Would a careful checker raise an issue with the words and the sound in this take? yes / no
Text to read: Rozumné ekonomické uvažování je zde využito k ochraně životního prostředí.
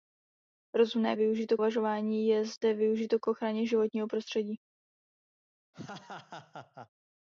yes